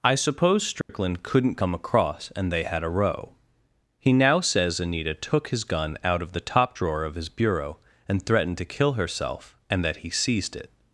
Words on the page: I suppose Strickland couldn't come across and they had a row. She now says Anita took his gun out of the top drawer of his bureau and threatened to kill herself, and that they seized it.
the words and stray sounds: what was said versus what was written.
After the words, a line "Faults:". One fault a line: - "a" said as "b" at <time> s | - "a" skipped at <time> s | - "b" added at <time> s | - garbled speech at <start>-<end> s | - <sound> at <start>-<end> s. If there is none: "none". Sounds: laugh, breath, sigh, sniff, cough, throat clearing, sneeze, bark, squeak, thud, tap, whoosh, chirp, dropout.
I suppose Strickland couldn't come across and they had a row. He now says Anita took his gun out of the top drawer of his bureau and threatened to kill herself, and that he seized it.
Faults:
- dropout at 0.8-0.9 s
- "She" said as "He" at 4.0 s
- "they" said as "he" at 10.0 s